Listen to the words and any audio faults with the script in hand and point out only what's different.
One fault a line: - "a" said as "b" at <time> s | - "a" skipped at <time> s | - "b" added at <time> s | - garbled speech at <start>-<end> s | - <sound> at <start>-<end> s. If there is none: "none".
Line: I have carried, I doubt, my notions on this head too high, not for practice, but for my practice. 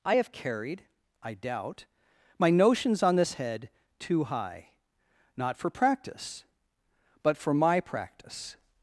none